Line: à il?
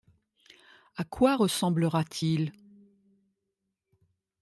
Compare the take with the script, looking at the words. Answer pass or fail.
fail